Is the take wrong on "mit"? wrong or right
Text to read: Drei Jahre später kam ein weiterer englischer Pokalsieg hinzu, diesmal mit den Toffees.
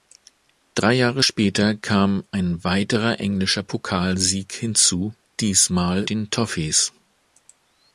wrong